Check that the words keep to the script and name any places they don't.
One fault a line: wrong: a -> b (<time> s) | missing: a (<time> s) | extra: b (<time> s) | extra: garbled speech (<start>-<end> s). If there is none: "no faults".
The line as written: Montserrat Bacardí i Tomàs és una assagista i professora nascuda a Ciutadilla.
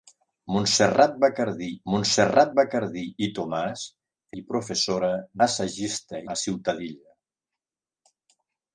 extra: montserrat Bacardí (1.9 s)
missing: és una assagista (3.8 s)
wrong: nascuda -> assagista (5.5 s)